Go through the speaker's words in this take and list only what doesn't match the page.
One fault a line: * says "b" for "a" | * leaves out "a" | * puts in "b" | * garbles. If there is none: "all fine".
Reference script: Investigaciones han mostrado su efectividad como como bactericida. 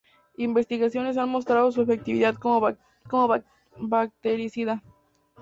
all fine